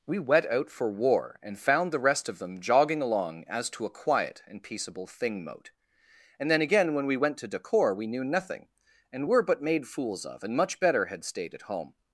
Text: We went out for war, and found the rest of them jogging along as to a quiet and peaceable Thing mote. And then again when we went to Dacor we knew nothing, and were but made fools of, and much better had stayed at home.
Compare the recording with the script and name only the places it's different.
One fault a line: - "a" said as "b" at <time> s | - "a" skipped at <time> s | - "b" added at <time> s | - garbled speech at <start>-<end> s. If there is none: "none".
- "went" said as "wet" at 0.2 s